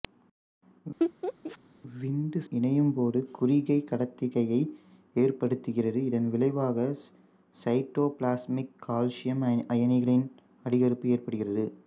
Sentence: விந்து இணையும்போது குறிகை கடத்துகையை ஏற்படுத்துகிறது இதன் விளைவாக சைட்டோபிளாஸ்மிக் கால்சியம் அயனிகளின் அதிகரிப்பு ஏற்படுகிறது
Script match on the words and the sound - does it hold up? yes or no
no